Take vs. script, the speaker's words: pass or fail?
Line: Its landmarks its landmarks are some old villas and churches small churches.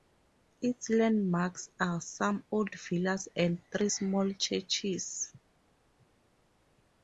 fail